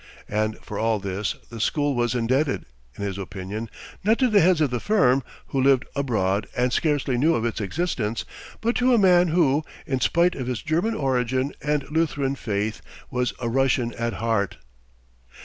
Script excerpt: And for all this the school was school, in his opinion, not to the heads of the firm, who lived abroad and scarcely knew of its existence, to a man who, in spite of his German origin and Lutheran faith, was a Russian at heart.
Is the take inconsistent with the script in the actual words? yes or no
yes